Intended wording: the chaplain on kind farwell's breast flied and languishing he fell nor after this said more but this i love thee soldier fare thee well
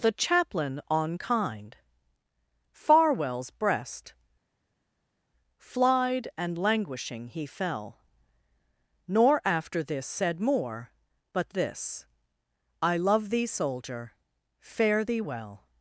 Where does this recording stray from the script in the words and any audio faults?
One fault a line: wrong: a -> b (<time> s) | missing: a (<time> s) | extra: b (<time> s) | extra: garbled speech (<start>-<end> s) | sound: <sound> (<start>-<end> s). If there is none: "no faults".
no faults